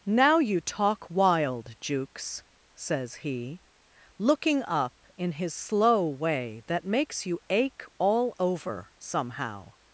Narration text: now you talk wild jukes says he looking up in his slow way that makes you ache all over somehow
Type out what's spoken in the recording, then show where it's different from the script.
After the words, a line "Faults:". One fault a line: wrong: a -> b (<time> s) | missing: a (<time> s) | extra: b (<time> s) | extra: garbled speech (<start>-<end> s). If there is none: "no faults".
now you talk wild jukes says he looking up in his slow way that makes you ache all over somehow
Faults:
no faults